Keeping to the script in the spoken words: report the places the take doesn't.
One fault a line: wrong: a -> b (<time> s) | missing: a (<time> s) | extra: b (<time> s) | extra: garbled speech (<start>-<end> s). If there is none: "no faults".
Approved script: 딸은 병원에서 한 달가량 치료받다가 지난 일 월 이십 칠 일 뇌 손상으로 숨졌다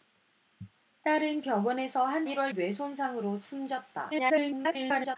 missing: 달가량 치료받다가 지난 (2.2 s)
missing: 이십 칠 일 (2.5 s)
extra: garbled speech (4.1-5.2 s)